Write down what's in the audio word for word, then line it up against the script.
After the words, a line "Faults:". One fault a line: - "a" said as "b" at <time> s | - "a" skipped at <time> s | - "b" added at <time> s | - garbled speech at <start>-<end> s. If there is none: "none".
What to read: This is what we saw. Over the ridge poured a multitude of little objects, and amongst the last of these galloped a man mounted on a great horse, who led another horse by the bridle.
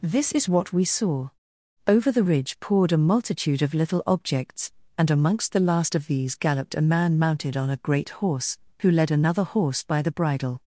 This is what we saw. Over the ridge poured a multitude of little objects, and amongst the last of these galloped a man mounted on a great horse, who led another horse by the bridle.
Faults:
none